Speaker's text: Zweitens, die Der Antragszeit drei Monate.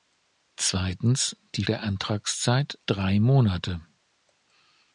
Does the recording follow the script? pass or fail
pass